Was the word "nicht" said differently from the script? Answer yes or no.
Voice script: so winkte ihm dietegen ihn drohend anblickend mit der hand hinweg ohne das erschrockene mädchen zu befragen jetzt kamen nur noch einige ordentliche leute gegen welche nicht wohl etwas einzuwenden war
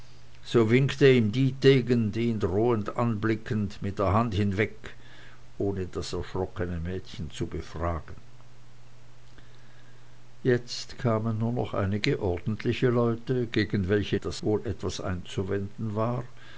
yes